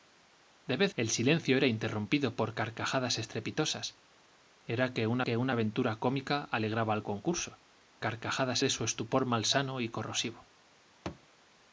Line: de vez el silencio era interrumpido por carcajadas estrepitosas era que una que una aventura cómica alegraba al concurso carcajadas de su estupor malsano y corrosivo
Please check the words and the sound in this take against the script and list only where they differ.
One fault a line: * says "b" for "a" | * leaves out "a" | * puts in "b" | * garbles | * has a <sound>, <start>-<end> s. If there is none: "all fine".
* has a thud, 11.1-11.3 s